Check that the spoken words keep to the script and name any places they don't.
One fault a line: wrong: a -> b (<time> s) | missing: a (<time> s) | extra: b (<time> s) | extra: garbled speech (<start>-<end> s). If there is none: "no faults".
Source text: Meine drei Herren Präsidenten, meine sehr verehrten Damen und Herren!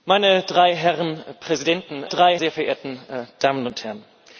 wrong: meine -> drei (2.0 s)